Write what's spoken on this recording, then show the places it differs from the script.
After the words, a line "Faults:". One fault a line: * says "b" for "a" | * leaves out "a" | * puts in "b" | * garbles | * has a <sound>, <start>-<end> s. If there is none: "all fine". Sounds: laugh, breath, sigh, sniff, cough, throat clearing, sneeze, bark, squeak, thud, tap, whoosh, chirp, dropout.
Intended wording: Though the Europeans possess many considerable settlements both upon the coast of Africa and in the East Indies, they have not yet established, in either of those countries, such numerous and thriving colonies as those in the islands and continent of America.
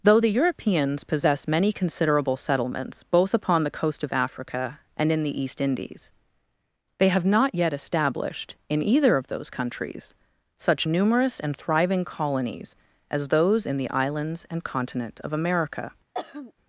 Though the Europeans possess many considerable settlements both upon the coast of Africa and in the East Indies, they have not yet established, in either of those countries, such numerous and thriving colonies as those in the islands and continent of America.
Faults:
* has a throat clearing, 16.1-16.5 s